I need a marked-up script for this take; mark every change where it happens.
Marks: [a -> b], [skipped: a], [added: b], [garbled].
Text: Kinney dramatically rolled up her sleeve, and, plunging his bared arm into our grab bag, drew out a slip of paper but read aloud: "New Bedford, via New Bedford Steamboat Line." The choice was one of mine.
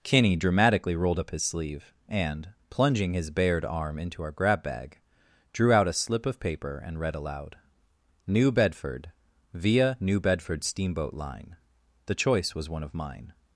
Kinney dramatically rolled up [her -> his] sleeve, and, plunging his bared arm into our grab bag, drew out a slip of paper [but -> and] read aloud: "New Bedford, via New Bedford Steamboat Line." The choice was one of mine.